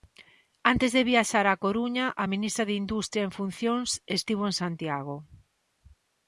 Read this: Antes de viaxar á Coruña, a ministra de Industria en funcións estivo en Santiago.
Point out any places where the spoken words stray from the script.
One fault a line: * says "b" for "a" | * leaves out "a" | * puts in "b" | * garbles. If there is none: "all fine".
all fine